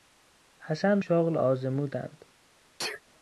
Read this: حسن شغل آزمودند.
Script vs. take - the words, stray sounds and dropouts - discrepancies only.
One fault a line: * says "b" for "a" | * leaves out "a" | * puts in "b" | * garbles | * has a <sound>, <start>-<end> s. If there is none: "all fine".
* has a sneeze, 2.8-3.0 s